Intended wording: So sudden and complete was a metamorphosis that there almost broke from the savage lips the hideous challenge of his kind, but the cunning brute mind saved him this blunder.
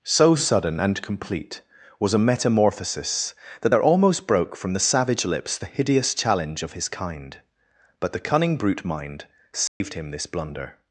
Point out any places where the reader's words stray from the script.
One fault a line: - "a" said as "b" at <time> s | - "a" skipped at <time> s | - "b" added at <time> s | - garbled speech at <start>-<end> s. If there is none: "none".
none